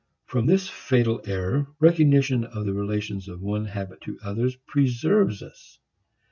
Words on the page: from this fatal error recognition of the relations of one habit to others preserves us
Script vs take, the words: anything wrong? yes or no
no